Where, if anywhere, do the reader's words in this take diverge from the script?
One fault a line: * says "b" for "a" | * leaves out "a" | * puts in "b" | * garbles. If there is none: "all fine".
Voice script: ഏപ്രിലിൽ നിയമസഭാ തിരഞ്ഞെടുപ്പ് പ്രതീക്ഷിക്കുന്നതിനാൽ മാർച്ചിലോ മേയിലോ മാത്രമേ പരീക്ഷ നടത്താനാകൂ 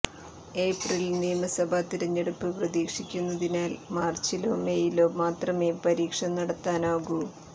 all fine